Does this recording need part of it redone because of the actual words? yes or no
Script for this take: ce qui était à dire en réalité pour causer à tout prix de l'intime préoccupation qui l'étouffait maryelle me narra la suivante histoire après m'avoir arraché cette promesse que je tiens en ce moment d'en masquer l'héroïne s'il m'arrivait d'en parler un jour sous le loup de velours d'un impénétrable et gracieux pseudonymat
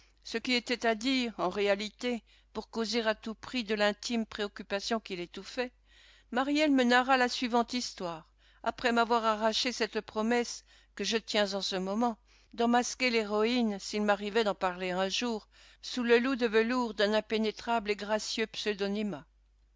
no